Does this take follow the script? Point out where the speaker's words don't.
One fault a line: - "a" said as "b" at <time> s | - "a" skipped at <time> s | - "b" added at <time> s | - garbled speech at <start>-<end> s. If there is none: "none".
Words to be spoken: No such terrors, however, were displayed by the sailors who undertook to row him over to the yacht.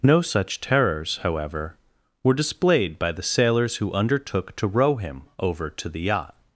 none